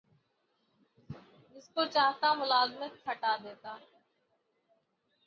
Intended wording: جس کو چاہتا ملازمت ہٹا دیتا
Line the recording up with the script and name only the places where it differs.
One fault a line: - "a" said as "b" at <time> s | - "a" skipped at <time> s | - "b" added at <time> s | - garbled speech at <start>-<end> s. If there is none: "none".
none